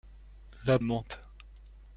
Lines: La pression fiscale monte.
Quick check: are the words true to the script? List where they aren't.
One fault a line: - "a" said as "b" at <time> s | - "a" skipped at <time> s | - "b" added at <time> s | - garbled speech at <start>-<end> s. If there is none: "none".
- "pression fiscale" skipped at 0.8 s